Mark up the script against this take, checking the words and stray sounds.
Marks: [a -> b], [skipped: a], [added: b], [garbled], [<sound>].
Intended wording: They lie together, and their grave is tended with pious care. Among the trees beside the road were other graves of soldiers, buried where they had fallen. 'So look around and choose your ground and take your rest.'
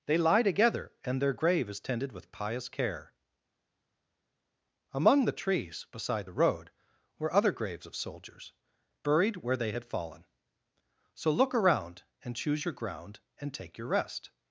They lie together, and their grave is tended with pious care. Among the trees beside the road were other graves of soldiers, buried where they had fallen. 'So look around and choose your ground and take your rest.'